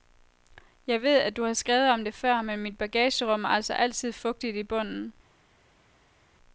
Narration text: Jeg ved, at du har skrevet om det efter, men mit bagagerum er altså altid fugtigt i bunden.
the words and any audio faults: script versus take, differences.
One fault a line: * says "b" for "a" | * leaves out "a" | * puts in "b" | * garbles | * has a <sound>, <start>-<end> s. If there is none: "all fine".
* says "før" for "efter"